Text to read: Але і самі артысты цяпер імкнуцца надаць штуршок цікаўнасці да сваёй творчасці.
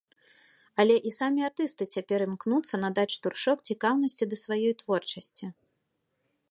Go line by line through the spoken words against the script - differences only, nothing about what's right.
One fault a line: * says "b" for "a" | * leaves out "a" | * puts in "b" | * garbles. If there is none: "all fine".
all fine